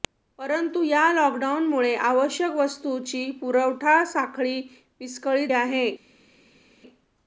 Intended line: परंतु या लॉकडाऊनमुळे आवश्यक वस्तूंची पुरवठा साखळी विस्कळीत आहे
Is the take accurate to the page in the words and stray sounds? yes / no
yes